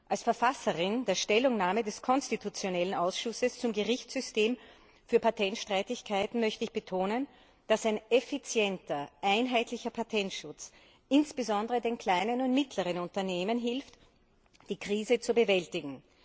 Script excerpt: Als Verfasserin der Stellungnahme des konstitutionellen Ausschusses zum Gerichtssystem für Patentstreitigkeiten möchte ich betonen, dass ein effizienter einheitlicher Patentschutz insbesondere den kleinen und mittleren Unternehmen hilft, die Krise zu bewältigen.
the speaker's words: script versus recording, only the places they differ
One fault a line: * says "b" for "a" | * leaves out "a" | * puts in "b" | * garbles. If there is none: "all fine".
all fine